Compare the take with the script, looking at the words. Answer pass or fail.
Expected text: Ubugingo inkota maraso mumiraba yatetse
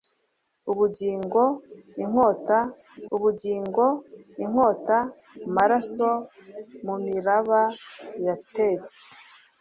fail